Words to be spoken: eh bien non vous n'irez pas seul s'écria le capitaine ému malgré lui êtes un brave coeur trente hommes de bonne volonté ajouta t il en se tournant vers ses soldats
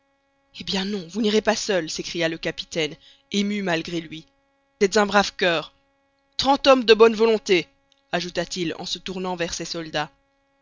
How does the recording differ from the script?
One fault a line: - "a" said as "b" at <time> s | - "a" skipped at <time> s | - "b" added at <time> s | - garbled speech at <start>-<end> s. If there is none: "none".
none